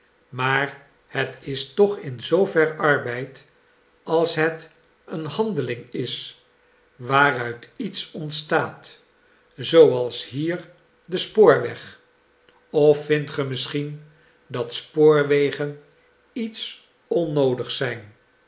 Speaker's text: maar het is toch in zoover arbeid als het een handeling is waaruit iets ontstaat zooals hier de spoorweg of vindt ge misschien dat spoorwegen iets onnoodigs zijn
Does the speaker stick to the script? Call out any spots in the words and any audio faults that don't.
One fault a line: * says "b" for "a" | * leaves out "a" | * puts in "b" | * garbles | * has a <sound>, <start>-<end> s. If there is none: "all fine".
all fine